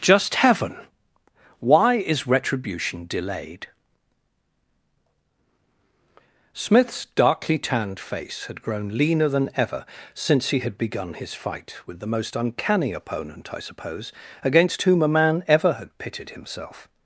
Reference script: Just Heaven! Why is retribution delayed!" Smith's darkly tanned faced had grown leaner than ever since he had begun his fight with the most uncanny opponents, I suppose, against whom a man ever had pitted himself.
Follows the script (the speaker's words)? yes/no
no